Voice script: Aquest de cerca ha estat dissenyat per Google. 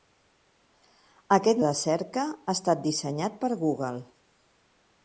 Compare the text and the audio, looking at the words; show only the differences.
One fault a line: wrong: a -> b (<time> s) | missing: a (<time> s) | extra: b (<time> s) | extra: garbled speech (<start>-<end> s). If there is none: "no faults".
no faults